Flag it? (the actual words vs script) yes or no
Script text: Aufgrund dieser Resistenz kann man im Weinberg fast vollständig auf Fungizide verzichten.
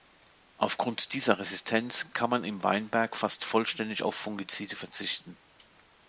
no